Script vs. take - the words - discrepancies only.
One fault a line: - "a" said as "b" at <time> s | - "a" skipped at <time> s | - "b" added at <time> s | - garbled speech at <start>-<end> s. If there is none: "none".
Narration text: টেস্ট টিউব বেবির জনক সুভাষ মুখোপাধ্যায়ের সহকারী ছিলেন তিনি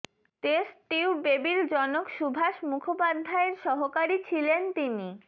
none